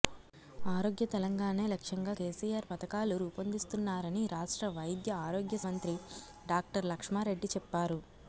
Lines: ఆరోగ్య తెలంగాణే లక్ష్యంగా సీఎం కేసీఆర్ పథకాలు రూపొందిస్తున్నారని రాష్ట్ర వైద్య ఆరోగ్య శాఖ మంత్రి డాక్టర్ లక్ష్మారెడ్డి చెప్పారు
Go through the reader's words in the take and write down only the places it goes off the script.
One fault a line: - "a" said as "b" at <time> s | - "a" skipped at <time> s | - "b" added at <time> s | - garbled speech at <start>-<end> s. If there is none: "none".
- "సీఎం" skipped at 2.1 s
- "శాఖ" skipped at 5.6 s